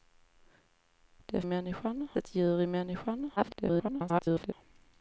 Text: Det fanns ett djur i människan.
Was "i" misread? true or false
false